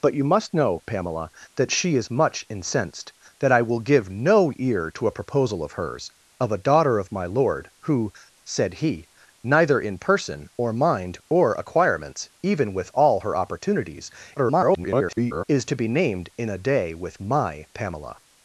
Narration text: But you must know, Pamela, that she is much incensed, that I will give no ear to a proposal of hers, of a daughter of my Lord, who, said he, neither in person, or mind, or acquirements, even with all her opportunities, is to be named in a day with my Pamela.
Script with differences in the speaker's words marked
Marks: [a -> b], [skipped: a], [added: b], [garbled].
But you must know, Pamela, that she is much incensed, that I will give no ear to a proposal of hers, of a daughter of my Lord, who, said he, neither in person, or mind, or acquirements, even with all her opportunities, [garbled] is to be named in a day with my Pamela.